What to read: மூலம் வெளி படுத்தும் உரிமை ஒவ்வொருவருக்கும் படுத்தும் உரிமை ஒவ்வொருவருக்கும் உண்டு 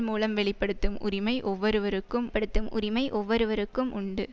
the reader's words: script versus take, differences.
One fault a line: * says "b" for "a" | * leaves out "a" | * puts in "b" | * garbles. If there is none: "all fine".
all fine